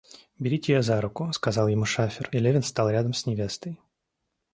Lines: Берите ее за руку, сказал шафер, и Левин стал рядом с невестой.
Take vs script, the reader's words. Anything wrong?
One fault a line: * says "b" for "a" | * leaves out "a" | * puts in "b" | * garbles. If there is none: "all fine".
* puts in "ему"